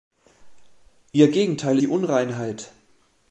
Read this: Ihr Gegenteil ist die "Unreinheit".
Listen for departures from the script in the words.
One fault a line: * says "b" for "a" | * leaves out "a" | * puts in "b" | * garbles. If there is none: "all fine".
* leaves out "ist"